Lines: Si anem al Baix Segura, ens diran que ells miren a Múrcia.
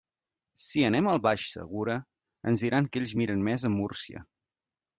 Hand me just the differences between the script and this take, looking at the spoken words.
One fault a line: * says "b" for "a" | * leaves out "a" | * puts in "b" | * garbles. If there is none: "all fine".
* puts in "més"